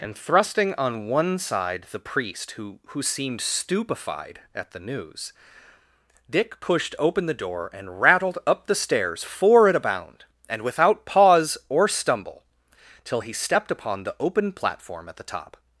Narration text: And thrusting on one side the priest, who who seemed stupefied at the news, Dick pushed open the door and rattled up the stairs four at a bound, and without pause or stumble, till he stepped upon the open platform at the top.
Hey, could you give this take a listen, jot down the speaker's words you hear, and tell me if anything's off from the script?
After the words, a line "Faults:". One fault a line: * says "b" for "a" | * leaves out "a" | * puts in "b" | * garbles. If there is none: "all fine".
And thrusting on one side the priest, who who seemed stupefied at the news, Dick pushed open the door and rattled up the stairs four at a bound, and without pause or stumble, till he stepped upon the open platform at the top.
Faults:
all fine